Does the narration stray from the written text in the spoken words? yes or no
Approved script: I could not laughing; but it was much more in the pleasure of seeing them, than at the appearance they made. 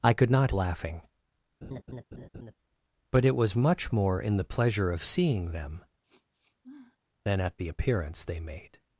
no